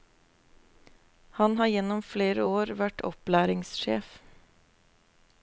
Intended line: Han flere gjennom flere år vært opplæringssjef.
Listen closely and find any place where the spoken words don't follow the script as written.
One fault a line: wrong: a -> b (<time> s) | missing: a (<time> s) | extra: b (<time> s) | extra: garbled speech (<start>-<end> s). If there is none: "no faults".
wrong: flere -> har (1.5 s)